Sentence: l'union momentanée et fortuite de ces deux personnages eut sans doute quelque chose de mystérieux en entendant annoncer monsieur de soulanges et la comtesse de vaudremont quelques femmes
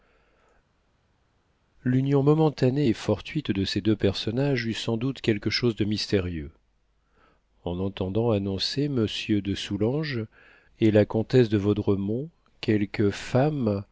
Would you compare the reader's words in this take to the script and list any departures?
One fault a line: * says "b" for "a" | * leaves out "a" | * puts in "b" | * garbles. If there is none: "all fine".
all fine